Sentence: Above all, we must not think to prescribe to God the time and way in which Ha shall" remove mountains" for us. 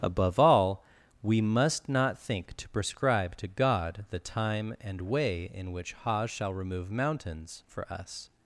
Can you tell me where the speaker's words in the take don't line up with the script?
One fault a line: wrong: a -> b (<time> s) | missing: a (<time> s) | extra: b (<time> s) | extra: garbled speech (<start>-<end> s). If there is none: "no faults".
no faults